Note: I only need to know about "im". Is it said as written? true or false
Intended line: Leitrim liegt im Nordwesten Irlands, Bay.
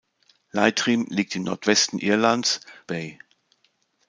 true